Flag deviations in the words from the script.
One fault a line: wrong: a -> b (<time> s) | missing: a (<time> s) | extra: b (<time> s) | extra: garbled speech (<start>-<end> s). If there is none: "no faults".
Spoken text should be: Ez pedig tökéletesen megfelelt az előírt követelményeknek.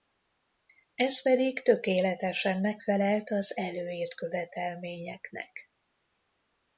no faults